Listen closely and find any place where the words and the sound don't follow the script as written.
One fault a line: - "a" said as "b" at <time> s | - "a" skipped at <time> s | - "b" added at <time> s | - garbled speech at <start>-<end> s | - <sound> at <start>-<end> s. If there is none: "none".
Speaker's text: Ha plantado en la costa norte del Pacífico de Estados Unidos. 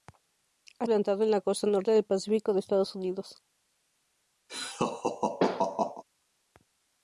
- laugh at 4.5-6.0 s